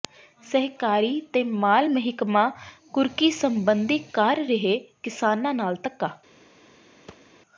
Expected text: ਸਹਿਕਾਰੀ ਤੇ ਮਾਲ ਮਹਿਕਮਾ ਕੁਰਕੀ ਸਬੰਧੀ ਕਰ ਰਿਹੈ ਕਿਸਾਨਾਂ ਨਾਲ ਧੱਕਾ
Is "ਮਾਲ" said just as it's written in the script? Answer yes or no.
yes